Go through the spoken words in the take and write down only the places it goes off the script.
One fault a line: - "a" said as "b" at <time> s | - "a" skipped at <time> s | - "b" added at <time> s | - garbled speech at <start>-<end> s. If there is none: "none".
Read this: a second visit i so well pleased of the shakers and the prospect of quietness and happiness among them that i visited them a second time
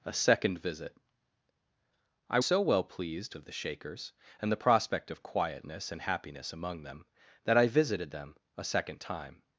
none